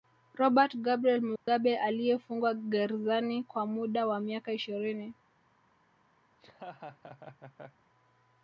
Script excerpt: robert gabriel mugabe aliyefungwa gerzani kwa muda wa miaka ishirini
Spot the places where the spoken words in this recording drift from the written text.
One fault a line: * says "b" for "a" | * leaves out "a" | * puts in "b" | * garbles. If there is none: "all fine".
all fine